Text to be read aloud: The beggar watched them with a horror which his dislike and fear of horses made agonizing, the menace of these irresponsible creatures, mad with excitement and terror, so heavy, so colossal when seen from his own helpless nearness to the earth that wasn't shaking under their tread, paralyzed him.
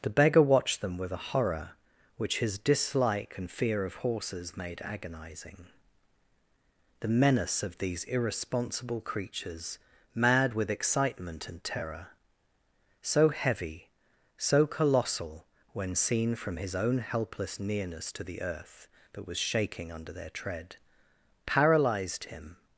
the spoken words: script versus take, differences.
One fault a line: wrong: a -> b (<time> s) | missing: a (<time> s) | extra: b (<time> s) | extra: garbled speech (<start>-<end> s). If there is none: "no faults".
wrong: wasn't -> was (19.3 s)